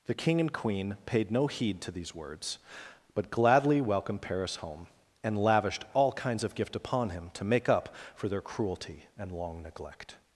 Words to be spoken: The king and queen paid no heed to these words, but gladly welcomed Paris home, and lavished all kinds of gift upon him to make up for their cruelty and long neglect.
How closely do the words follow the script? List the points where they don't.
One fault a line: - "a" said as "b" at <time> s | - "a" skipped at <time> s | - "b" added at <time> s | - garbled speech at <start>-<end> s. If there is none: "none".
none